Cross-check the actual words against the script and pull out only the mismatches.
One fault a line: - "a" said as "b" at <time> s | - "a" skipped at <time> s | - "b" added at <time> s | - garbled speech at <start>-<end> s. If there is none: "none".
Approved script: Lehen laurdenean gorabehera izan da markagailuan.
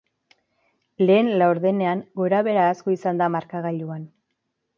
- "asko" added at 2.7 s